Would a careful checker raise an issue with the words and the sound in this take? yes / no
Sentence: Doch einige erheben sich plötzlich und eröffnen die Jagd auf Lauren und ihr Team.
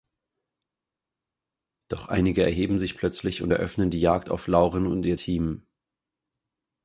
no